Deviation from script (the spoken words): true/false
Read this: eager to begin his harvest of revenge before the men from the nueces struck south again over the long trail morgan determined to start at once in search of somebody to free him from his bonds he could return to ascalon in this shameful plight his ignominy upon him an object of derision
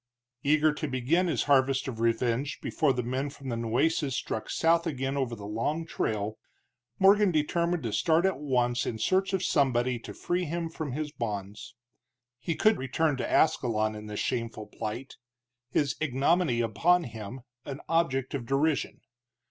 false